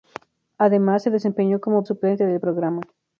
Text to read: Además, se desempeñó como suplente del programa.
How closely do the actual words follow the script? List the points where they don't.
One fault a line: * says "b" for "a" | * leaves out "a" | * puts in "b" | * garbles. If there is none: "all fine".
all fine